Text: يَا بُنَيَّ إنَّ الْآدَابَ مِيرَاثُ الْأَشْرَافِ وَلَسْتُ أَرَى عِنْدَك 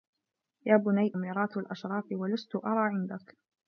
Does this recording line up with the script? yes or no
no